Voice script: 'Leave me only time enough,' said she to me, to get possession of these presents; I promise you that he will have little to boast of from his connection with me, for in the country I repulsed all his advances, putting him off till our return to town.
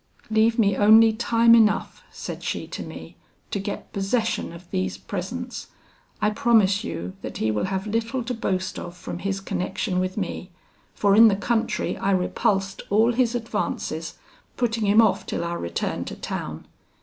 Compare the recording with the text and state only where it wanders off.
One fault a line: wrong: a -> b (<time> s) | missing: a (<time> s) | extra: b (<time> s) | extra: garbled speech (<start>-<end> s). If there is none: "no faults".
no faults